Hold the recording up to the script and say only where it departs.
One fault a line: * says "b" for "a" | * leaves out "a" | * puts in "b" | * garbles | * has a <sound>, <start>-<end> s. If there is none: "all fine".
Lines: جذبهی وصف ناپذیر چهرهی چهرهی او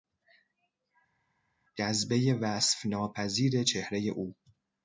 * leaves out "چهرهی"